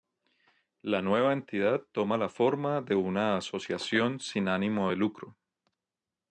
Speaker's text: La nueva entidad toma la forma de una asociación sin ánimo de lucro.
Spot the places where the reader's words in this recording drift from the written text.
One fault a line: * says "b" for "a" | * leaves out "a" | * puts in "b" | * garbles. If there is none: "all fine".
all fine